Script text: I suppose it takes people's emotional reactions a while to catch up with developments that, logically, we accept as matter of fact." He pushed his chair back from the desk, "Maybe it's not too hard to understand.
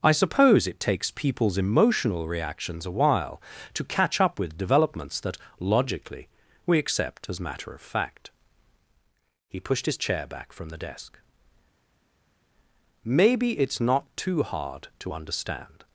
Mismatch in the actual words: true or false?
false